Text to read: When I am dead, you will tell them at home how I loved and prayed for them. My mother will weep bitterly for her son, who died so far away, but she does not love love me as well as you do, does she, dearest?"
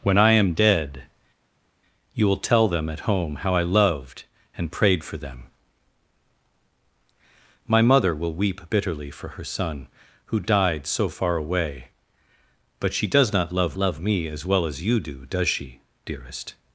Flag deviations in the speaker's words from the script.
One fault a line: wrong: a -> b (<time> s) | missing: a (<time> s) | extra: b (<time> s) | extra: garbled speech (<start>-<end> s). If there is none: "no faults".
no faults